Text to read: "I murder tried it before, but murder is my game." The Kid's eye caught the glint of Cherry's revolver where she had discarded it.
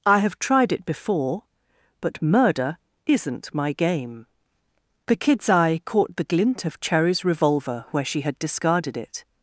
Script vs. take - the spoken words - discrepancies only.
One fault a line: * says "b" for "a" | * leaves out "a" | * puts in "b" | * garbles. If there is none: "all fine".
* says "have" for "murder"
* says "isn't" for "is"